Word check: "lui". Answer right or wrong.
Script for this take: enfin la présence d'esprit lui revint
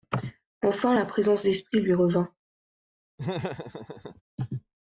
right